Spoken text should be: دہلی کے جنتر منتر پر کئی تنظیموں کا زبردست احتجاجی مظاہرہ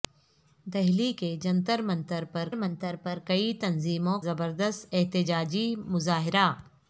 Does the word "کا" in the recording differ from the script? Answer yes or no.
yes